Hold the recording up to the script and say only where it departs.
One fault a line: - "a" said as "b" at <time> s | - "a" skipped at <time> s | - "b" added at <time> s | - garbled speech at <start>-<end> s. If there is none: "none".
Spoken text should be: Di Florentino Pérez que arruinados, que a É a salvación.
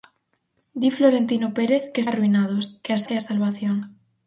none